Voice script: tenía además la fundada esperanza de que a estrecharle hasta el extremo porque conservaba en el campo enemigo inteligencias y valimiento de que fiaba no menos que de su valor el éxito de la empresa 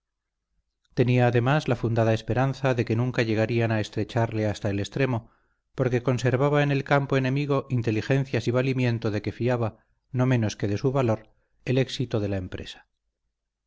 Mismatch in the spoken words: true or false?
true